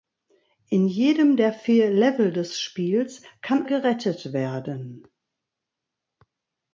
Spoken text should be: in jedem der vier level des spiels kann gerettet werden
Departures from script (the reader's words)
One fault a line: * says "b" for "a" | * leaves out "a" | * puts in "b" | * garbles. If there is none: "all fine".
all fine